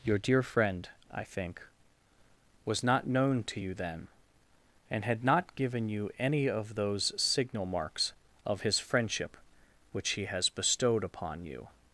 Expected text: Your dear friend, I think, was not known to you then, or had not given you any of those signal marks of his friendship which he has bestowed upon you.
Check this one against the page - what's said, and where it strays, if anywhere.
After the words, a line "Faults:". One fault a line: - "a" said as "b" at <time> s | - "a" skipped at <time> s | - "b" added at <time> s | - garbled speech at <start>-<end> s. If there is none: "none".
Your dear friend, I think, was not known to you then, and had not given you any of those signal marks of his friendship which he has bestowed upon you.
Faults:
- "or" said as "and" at 4.9 s